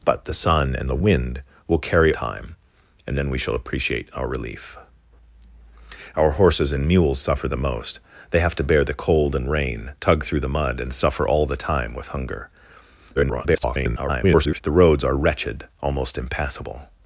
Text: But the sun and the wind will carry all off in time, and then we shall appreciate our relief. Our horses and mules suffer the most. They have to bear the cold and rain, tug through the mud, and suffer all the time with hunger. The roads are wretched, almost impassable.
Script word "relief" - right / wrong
right